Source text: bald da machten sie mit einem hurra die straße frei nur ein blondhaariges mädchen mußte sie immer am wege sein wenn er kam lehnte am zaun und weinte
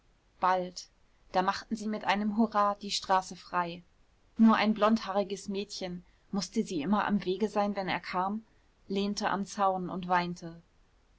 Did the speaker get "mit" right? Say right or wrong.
right